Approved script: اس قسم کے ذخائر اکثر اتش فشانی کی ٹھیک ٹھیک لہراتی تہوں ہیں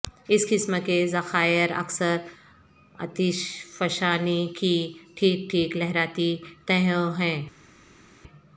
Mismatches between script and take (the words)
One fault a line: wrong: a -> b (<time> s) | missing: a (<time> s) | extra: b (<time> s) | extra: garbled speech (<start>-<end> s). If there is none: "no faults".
no faults